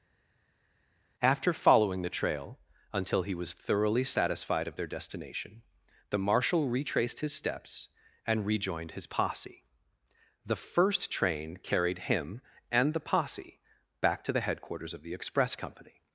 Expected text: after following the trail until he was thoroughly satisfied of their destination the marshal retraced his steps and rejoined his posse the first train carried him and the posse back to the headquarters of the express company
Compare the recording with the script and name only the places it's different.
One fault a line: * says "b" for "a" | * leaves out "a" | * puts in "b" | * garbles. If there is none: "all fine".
all fine